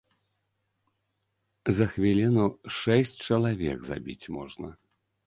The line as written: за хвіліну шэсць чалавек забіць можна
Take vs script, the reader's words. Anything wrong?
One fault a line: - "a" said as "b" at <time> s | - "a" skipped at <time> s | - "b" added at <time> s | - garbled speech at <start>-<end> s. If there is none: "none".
none